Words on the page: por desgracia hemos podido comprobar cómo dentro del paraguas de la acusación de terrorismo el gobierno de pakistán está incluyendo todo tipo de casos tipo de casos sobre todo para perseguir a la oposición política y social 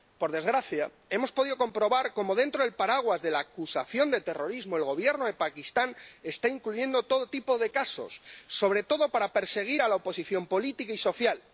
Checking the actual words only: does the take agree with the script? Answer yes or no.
no